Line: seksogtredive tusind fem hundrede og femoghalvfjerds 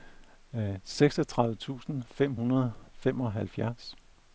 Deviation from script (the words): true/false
false